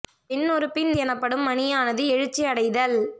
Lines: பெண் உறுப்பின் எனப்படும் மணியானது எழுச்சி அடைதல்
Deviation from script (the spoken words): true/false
false